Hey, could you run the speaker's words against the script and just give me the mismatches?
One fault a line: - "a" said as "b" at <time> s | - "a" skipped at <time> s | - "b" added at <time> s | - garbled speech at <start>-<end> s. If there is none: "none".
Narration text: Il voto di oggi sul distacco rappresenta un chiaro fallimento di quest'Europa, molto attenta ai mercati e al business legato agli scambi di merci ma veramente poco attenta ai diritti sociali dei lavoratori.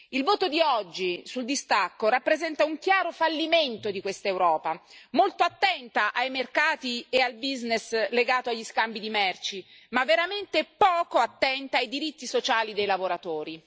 none